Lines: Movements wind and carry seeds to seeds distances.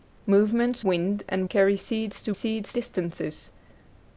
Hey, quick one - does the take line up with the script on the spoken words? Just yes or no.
yes